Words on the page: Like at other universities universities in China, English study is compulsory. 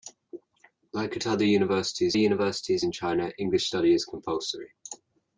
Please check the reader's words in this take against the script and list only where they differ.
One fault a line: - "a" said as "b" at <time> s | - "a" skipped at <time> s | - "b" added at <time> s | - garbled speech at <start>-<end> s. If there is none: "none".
none